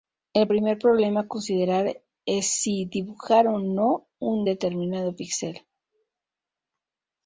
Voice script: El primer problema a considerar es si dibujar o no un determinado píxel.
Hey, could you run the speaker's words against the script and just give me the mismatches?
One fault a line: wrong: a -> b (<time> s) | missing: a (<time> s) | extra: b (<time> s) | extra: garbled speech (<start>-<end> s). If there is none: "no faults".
no faults